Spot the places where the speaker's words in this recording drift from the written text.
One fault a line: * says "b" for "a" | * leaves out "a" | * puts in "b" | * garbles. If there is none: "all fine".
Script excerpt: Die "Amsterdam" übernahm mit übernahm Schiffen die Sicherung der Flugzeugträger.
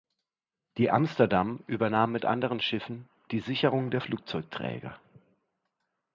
* says "anderen" for "übernahm"